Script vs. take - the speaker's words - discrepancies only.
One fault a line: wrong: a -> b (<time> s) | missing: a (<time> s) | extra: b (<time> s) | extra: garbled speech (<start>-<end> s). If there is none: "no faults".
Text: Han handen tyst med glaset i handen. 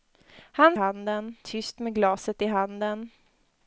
no faults